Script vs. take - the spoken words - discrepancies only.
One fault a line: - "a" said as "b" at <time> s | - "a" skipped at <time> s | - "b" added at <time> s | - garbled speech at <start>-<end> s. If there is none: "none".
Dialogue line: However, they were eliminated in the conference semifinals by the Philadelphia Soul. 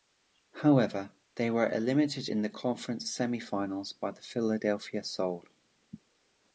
none